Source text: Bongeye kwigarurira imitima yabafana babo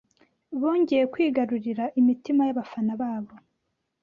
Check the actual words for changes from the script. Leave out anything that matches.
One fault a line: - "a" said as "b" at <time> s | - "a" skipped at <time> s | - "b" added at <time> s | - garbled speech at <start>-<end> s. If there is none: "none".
none